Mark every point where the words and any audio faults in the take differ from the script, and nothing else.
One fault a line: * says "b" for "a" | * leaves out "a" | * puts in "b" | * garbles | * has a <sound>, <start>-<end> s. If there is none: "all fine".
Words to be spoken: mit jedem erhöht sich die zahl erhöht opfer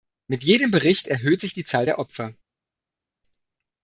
* puts in "bericht"
* says "der" for "erhöht"